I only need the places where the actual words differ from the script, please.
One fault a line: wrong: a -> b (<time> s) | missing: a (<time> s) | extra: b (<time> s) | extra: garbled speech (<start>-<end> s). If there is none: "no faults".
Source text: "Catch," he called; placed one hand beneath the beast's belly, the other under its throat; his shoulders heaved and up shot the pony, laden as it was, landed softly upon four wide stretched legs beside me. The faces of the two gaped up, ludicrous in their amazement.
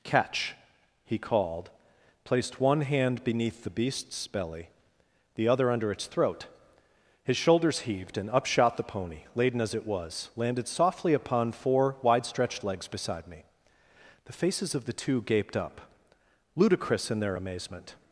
no faults